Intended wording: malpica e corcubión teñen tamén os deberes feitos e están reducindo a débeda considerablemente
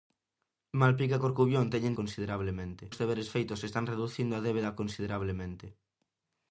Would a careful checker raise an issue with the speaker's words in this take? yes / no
yes